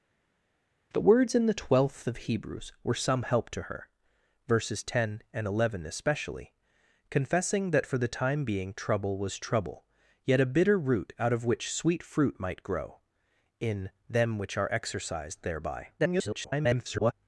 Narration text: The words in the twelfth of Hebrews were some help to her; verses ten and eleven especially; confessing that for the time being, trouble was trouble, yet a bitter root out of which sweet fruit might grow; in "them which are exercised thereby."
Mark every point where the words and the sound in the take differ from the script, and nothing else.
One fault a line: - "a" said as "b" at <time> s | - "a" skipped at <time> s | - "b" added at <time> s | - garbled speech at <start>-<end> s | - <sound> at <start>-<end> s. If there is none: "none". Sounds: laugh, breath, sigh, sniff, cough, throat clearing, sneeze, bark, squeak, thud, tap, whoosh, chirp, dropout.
- garbled speech at 16.0-17.1 s